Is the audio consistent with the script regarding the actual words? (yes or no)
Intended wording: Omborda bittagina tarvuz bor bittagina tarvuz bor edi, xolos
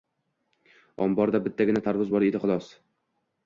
no